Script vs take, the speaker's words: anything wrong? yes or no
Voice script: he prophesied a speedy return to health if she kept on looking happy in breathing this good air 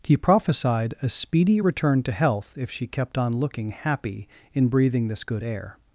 no